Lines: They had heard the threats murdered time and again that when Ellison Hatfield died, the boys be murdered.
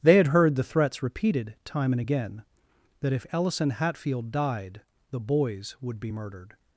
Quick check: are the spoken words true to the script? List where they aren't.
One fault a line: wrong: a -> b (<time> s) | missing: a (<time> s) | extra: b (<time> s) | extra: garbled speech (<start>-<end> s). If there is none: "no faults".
wrong: murdered -> repeated (1.0 s)
wrong: when -> if (3.1 s)
extra: would (5.8 s)